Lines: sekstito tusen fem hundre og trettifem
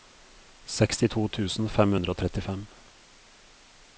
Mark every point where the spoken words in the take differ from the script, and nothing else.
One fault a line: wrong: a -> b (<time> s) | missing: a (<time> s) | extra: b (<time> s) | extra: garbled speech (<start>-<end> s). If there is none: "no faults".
no faults